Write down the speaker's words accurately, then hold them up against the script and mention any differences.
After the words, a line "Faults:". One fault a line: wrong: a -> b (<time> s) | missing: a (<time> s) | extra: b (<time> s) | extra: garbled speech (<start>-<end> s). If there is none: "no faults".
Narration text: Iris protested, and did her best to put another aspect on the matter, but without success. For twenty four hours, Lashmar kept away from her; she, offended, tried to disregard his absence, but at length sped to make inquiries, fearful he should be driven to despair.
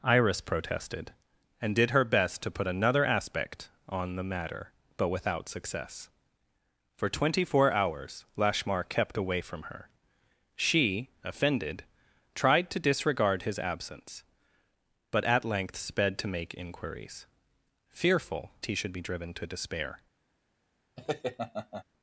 Iris protested, and did her best to put another aspect on the matter, but without success. For twenty four hours, Lashmar kept away from her; she, offended, tried to disregard his absence, but at length sped to make inquiries, fearful he should be driven to despair.
Faults:
no faults